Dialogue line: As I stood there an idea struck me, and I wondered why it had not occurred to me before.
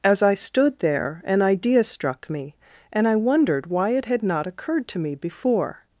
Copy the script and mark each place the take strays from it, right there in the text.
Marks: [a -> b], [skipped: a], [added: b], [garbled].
As I stood there an idea struck me, and I wondered why it had not occurred to me before.